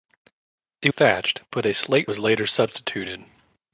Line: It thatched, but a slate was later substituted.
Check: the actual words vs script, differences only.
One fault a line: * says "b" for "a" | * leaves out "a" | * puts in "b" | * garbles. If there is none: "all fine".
all fine